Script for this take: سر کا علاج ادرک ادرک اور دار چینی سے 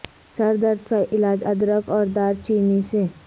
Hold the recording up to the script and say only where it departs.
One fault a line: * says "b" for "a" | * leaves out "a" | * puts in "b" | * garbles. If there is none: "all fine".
* puts in "درد"
* leaves out "ادرک"